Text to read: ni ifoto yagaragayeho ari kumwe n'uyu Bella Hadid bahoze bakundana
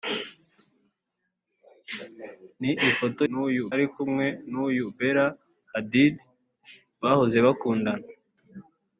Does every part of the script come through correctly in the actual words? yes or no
no